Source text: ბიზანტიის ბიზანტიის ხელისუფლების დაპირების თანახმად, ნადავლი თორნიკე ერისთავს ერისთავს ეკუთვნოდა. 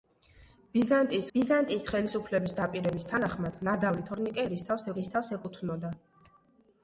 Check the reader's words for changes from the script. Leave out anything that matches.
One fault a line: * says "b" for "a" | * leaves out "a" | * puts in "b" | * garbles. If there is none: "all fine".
all fine